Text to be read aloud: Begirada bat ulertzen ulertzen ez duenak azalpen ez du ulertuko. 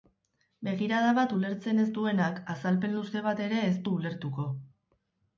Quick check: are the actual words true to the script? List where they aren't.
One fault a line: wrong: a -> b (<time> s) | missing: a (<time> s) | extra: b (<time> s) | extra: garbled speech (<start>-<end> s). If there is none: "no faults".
missing: ulertzen (1.8 s)
extra: luze bat ere (3.0 s)